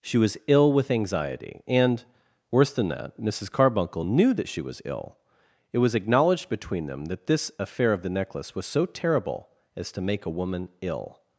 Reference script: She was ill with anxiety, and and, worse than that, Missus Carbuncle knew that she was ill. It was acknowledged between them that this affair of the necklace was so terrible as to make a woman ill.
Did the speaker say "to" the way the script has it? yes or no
yes